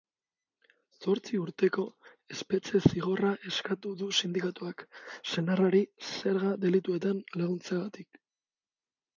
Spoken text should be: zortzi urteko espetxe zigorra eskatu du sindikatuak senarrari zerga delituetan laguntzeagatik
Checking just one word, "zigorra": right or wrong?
right